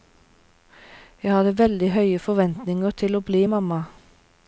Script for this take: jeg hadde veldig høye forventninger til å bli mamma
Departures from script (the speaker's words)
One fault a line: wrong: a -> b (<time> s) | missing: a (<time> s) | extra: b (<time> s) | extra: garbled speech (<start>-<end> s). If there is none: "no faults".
no faults